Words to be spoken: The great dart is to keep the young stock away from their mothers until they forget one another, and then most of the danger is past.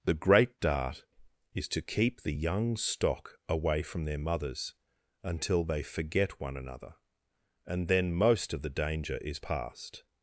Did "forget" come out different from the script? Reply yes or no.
no